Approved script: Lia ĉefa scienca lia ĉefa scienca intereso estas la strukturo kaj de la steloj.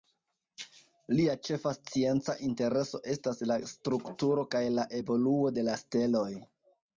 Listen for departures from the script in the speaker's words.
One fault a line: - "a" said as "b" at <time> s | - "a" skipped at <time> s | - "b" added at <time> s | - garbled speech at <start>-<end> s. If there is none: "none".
- "lia ĉefa scienca" skipped at 2.4 s
- "la evoluo" added at 4.8 s